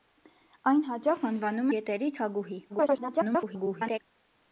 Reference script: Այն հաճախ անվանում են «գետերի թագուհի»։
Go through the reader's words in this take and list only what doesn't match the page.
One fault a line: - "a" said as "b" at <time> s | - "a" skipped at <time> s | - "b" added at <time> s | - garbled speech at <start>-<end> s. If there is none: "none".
- "են" skipped at 1.7 s
- garbled speech at 2.7-4.0 s